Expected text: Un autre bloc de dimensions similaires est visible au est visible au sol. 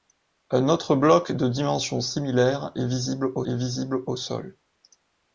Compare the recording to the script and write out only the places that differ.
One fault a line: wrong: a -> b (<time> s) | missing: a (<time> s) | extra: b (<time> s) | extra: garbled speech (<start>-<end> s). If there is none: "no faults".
no faults